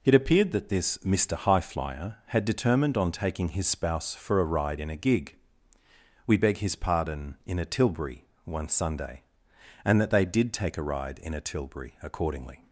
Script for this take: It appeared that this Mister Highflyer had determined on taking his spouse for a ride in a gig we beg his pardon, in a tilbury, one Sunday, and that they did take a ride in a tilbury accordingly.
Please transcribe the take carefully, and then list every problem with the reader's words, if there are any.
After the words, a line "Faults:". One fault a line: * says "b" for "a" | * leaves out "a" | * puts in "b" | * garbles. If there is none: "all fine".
It appeared that this Mister Highflyer had determined on taking his spouse for a ride in a gig we beg his pardon, in a tilbury, one Sunday, and that they did take a ride in a tilbury accordingly.
Faults:
all fine